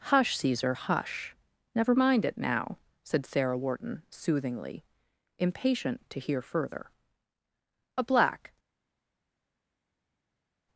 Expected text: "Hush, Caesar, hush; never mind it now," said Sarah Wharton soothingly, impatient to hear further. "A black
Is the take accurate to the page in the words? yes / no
yes